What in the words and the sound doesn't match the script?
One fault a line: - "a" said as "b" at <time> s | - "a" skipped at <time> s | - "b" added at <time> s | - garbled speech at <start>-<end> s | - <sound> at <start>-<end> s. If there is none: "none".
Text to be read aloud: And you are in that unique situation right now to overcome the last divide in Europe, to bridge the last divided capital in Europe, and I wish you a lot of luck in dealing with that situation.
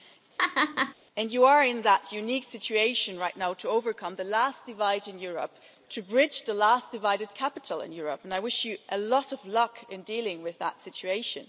- laugh at 0.4-0.9 s